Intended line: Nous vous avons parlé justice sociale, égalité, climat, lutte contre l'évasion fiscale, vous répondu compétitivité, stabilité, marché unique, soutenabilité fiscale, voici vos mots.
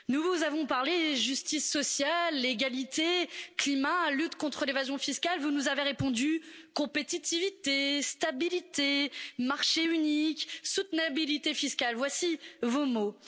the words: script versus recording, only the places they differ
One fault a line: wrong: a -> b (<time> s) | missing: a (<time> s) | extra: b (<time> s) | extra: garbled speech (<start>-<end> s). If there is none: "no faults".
extra: nous avez (5.5 s)